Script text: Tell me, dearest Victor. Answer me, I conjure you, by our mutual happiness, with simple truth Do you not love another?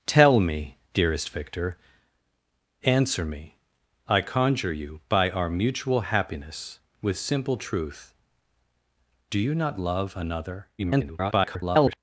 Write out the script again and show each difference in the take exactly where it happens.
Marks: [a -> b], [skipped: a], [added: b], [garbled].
Tell me, dearest Victor. Answer me, I conjure you, by our mutual happiness, with simple truth Do you not love another? [garbled]